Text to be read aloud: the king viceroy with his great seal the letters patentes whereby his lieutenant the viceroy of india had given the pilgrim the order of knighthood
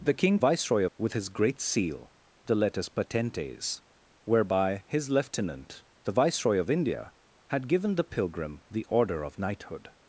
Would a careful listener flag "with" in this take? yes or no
no